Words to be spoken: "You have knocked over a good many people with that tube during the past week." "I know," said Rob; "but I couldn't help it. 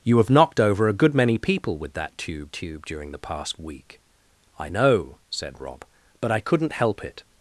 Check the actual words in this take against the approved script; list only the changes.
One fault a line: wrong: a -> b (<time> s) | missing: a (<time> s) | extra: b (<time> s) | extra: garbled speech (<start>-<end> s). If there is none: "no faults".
extra: tube (2.5 s)